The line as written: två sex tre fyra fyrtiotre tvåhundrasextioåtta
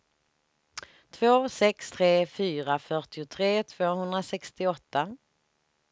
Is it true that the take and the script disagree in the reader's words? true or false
false